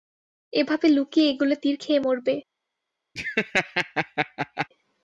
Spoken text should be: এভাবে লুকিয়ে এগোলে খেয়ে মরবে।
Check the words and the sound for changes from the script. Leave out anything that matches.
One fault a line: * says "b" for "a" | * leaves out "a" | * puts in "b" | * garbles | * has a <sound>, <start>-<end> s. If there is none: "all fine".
* puts in "তীর"
* has a laugh, 3.2-4.7 s